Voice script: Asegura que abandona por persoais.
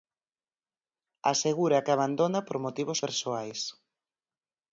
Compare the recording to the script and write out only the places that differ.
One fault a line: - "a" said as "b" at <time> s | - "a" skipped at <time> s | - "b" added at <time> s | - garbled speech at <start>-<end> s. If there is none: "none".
- "motivos" added at 2.7 s